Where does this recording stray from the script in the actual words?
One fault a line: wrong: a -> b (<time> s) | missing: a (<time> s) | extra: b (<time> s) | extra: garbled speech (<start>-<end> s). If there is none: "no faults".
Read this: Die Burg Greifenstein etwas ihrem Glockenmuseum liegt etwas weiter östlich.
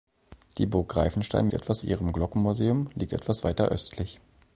no faults